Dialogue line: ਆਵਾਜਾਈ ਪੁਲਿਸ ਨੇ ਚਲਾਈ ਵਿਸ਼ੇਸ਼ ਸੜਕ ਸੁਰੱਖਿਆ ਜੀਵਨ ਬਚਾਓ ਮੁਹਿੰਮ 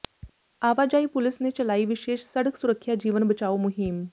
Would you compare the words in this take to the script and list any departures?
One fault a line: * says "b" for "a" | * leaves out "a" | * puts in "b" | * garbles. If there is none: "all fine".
all fine